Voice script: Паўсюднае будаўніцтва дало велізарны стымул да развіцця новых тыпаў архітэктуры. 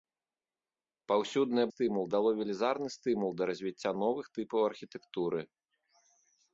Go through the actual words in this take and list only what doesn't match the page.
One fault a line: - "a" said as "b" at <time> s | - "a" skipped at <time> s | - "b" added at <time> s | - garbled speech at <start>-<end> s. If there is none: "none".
- "будаўніцтва" said as "стымул" at 1.7 s